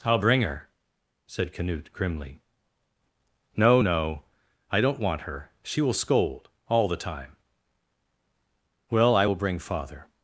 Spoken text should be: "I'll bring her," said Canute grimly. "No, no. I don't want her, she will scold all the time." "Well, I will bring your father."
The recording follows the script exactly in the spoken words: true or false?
false